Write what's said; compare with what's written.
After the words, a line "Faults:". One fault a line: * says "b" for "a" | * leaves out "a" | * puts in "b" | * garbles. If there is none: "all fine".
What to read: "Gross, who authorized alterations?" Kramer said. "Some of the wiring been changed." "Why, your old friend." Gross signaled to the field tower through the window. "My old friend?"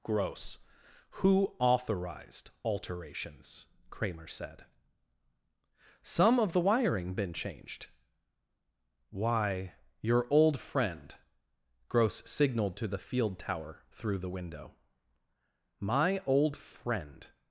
"Gross, who authorized alterations?" Kramer said. "Some of the wiring been changed." "Why, your old friend." Gross signaled to the field tower through the window. "My old friend?"
Faults:
all fine